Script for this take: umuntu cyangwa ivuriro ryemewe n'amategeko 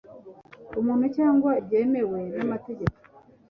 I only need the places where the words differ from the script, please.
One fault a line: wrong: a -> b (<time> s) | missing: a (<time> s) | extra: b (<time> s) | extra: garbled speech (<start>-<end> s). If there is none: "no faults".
missing: ivuriro (1.5 s)